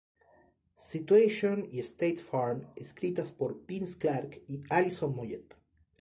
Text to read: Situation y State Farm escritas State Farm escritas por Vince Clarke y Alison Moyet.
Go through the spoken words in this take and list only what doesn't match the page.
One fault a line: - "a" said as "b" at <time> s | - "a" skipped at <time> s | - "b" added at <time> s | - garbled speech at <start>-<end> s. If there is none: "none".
- "State Farm escritas" skipped at 3.3 s